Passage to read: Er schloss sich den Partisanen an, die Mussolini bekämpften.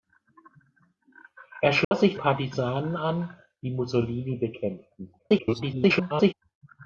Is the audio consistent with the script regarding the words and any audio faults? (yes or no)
no